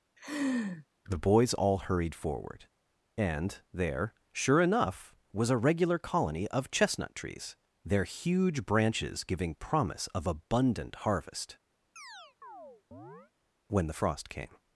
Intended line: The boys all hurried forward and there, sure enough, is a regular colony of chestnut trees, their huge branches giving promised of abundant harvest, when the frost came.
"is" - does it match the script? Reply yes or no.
no